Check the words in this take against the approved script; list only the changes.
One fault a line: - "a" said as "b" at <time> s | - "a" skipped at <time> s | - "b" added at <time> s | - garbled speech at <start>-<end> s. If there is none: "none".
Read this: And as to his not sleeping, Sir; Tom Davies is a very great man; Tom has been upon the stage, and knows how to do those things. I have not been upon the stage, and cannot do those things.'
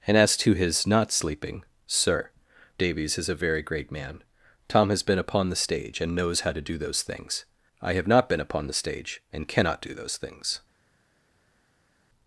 - "Tom" skipped at 2.3 s